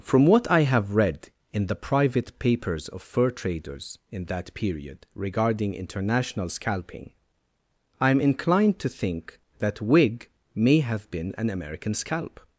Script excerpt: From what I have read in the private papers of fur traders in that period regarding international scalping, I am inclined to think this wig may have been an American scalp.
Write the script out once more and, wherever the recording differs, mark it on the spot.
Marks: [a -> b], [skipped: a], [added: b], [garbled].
From what I have read in the private papers of fur traders in that period regarding international scalping, I am inclined to think [this -> that] wig may have been an American scalp.